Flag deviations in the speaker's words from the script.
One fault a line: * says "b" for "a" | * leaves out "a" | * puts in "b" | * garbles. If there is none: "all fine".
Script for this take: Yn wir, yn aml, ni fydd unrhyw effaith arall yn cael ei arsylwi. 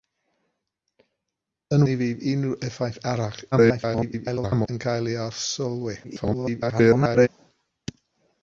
* leaves out "wir yn aml"
* garbles
* garbles